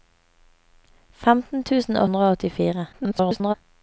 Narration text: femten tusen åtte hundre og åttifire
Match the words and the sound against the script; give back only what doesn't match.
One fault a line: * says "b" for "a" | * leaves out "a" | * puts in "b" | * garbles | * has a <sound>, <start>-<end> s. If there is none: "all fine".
* leaves out "åtte"
* garbles